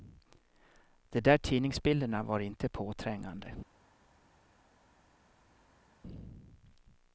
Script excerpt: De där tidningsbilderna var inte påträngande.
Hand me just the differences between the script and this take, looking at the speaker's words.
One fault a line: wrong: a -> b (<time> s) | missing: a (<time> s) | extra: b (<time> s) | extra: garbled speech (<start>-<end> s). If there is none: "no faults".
no faults